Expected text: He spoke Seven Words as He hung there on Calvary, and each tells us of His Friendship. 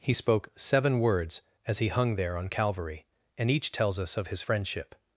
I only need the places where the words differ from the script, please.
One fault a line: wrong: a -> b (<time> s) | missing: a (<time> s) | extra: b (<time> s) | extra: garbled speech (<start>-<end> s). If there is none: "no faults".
no faults